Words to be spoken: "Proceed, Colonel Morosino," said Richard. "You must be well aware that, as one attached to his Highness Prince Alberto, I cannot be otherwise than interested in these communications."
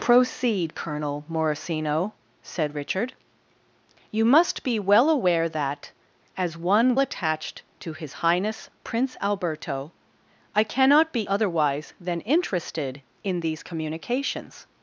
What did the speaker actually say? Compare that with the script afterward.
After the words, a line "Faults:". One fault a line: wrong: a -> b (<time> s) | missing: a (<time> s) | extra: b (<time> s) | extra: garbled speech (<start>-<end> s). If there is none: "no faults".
"Proceed, Colonel Morosino," said Richard. "You must be well aware that, as one attached to his Highness Prince Alberto, I cannot be otherwise than interested in these communications."
Faults:
no faults